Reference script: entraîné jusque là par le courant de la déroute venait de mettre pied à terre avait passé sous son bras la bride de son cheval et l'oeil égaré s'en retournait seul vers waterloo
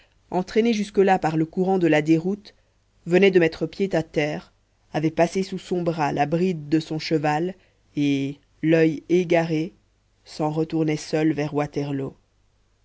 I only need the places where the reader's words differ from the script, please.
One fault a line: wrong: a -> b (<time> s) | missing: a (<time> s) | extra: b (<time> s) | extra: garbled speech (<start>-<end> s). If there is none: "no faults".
no faults